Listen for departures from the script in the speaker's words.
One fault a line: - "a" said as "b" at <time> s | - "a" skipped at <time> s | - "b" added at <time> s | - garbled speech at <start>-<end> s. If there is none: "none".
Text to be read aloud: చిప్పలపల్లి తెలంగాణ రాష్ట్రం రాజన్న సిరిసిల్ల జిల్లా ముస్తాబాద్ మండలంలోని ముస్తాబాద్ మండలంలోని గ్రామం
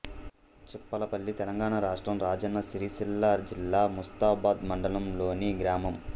- "ముస్తాబాద్ మండలంలోని" skipped at 5.5 s